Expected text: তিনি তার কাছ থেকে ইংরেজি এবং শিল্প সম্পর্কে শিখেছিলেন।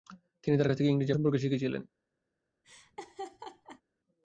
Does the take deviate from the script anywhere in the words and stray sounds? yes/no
yes